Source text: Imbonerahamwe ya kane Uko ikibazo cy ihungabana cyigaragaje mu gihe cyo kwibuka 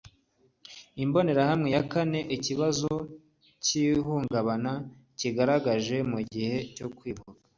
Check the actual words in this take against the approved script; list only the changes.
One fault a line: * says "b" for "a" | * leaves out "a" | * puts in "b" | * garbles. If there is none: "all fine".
* leaves out "Uko"